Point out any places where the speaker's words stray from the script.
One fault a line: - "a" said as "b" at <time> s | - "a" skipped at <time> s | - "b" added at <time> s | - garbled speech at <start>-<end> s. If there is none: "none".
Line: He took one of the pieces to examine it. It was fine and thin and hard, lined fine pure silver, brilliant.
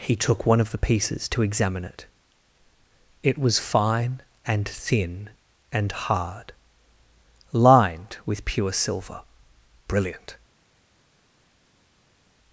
- "fine" said as "with" at 8.2 s